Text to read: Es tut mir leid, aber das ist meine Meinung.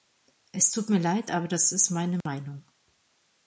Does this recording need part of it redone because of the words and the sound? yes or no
yes